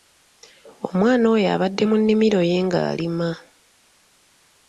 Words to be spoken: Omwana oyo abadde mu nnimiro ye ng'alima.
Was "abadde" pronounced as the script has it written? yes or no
yes